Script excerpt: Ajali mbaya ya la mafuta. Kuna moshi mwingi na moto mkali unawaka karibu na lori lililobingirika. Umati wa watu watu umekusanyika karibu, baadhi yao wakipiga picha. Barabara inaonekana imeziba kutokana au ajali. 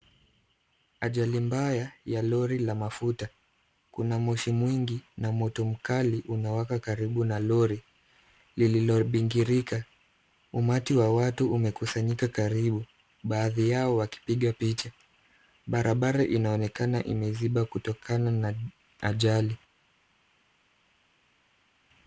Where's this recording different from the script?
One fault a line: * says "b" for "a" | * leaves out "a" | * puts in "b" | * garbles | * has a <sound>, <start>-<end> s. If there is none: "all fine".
* puts in "lori"
* leaves out "watu"
* says "na" for "au"